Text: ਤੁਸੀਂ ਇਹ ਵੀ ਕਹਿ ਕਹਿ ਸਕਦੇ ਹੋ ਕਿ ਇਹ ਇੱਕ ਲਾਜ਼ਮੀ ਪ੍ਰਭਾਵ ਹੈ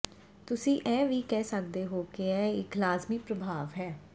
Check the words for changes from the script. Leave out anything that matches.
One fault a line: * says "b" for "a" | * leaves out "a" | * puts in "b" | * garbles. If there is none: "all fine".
* leaves out "ਕਹਿ"